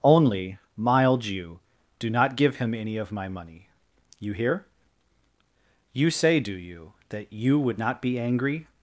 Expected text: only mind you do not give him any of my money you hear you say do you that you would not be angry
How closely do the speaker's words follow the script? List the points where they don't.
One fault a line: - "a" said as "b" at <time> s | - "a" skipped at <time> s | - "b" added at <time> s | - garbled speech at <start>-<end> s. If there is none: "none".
- "mind" said as "mild" at 0.8 s